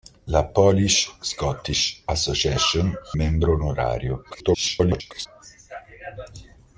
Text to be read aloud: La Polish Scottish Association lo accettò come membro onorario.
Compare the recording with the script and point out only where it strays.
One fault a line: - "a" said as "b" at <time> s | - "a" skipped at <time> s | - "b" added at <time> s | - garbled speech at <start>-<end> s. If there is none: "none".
- "lo accettò come" skipped at 2.9 s
- garbled speech at 4.3-5.3 s